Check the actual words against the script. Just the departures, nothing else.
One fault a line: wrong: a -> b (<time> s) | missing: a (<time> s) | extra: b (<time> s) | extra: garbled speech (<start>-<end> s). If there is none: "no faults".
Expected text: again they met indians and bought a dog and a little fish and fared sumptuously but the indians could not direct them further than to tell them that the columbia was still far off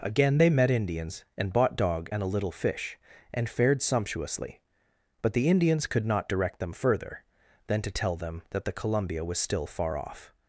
missing: a (1.8 s)